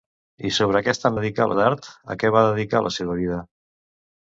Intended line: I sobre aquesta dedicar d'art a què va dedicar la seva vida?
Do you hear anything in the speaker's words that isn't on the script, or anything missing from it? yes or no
no